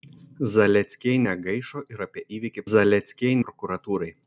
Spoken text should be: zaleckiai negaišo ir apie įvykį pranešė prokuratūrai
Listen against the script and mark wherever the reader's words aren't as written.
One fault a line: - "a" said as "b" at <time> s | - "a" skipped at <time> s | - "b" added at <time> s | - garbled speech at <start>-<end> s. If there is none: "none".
- "pranešė" said as "zaleckiai" at 2.7 s